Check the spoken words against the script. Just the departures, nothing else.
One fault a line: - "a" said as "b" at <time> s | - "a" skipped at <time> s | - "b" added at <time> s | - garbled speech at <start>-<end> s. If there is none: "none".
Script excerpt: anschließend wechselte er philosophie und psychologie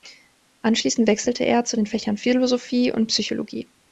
- "zu den fächern" added at 1.6 s